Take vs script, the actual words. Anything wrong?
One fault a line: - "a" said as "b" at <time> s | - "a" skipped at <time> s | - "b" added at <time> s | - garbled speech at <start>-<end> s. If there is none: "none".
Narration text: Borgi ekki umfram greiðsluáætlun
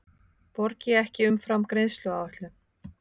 none